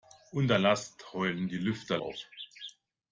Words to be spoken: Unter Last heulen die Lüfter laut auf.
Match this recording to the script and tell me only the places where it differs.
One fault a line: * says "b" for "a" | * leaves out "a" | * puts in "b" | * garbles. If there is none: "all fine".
* leaves out "laut"